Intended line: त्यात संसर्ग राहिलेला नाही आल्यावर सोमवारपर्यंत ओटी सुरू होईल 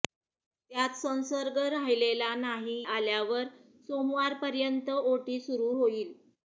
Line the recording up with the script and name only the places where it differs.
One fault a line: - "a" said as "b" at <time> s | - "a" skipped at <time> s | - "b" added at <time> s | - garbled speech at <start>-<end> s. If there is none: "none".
none